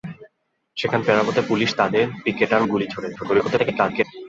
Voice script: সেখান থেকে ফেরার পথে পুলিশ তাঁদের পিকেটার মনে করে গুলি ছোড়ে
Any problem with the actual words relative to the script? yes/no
yes